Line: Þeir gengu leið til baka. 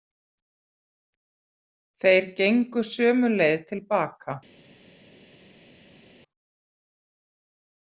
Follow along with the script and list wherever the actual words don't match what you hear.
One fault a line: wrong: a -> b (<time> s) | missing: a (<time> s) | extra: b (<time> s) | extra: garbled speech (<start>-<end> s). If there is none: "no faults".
extra: sömu (2.9 s)